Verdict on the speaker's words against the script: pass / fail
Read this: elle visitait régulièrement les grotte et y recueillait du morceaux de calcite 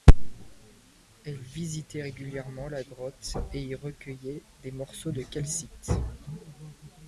fail